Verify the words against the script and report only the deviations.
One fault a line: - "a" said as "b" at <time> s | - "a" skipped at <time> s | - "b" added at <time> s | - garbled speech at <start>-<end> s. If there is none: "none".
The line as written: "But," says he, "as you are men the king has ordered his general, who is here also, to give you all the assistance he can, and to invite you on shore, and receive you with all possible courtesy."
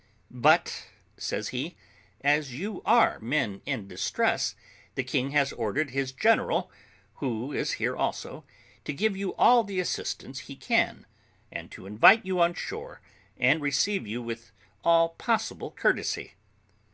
- "in distress" added at 3.7 s